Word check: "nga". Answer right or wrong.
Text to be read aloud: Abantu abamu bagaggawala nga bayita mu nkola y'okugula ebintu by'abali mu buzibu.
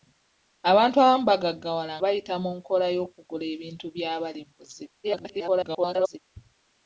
wrong